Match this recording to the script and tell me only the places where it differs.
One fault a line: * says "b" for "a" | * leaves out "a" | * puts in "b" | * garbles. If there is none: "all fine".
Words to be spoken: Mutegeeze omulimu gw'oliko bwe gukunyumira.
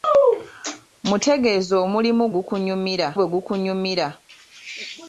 * says "gukunyumira" for "gw'oliko"